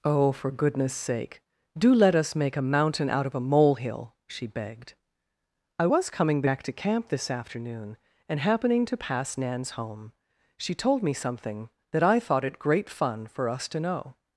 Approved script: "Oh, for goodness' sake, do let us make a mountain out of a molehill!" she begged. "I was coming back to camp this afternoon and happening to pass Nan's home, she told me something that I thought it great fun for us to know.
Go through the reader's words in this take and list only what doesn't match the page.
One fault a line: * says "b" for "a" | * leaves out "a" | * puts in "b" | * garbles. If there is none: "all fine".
all fine